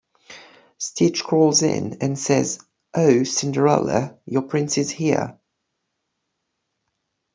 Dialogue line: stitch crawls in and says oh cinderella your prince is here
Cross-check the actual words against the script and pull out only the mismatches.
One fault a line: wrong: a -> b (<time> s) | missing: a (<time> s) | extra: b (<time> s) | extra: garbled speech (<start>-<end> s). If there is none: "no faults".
no faults